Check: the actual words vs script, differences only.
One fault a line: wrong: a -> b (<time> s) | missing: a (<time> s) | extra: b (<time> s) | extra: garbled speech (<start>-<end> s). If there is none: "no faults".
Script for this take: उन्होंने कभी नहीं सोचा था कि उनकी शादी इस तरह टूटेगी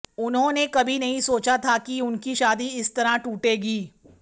no faults